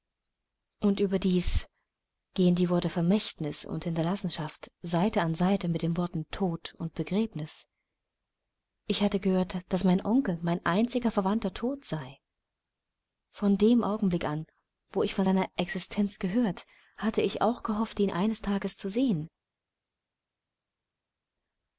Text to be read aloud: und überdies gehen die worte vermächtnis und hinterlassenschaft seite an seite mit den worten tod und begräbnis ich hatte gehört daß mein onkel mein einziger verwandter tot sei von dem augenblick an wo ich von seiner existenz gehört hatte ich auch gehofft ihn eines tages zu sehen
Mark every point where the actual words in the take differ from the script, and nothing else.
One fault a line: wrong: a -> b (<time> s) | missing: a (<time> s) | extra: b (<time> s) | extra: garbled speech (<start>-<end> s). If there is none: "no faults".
no faults